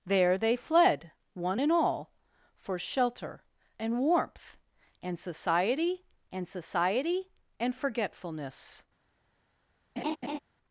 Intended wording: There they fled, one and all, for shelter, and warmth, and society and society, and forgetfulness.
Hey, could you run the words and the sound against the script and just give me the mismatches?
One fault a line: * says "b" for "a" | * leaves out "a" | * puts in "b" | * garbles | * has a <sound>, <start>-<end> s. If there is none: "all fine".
* has a laugh, 10.0-10.4 s